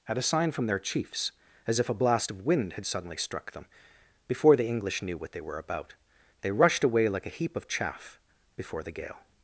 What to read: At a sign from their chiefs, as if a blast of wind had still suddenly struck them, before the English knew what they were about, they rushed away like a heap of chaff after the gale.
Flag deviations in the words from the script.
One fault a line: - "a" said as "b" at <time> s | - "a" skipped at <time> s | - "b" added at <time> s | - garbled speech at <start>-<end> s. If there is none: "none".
- "still" skipped at 2.9 s
- "after" said as "before" at 8.6 s